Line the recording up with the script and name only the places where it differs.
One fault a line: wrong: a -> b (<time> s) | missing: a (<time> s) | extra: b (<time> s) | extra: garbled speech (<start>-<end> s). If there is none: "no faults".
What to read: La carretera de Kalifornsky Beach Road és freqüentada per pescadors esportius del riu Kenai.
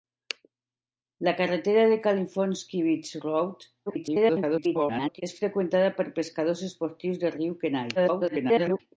extra: garbled speech (3.9-5.2 s)
extra: garbled speech (8.0-8.8 s)